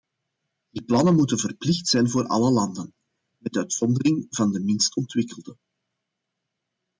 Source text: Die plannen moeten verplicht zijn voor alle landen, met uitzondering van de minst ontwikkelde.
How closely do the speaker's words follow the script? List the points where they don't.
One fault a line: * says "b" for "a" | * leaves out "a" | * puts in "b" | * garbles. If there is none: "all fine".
all fine